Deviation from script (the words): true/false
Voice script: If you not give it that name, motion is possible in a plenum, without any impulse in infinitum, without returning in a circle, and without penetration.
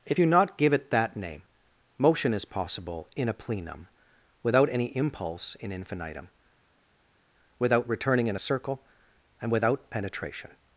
false